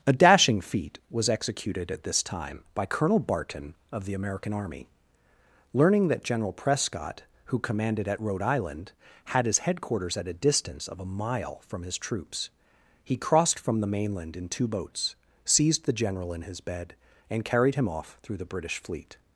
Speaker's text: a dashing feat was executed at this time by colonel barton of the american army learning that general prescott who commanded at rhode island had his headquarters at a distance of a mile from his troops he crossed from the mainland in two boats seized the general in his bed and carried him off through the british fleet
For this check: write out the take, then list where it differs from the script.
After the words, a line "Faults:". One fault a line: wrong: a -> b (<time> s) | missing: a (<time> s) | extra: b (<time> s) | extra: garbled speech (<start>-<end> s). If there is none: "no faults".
a dashing feat was executed at this time by colonel barton of the american army learning that general prescott who commanded at rhode island had his headquarters at a distance of a mile from his troops he crossed from the mainland in two boats seized the general in his bed and carried him off through the british fleet
Faults:
no faults